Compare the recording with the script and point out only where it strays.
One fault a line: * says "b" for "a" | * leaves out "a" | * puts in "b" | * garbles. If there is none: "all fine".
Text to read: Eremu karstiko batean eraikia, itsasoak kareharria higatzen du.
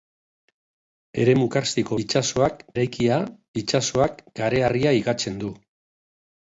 * says "itsasoak" for "batean"